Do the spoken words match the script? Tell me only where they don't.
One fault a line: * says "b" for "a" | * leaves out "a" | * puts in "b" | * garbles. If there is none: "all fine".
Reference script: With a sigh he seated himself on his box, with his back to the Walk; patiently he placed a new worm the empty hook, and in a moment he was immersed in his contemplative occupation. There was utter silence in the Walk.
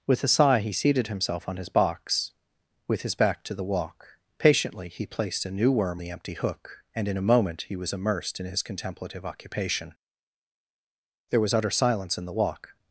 all fine